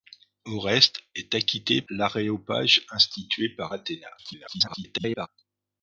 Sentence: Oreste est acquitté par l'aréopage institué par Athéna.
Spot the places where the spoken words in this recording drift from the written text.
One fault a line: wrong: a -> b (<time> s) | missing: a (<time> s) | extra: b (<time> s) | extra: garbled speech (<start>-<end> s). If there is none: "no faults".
missing: par (1.8 s)
extra: garbled speech (4.2-5.3 s)